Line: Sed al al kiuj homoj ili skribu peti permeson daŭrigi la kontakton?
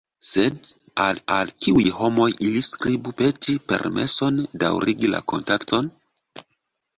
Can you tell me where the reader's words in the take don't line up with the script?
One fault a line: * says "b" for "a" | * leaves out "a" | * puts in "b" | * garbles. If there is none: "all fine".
all fine